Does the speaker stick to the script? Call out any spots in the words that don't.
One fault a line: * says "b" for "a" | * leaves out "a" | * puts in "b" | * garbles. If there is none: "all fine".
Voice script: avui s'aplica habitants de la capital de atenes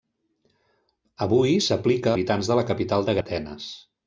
all fine